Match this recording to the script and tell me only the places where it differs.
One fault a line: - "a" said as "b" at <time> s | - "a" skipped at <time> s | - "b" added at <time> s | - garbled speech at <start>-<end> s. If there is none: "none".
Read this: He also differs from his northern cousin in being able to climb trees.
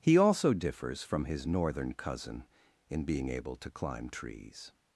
none